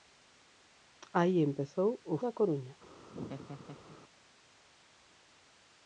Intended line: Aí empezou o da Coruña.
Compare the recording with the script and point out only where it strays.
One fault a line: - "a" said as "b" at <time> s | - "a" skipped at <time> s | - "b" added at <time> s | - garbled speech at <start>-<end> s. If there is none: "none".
none